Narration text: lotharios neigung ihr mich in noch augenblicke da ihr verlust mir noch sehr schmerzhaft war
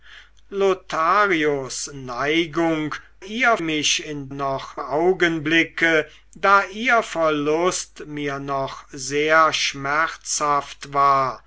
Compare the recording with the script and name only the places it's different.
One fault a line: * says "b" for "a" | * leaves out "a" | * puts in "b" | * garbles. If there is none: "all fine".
all fine